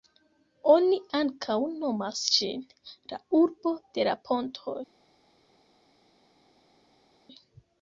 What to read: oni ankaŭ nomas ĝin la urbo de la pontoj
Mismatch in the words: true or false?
false